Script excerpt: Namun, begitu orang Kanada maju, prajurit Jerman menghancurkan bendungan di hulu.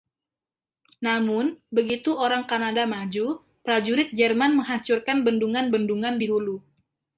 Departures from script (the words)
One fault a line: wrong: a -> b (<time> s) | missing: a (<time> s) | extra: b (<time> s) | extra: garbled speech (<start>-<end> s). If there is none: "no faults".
extra: bendungan (5.7 s)